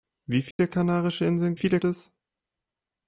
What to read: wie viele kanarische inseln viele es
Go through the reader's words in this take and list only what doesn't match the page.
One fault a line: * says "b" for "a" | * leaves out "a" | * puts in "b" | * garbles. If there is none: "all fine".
all fine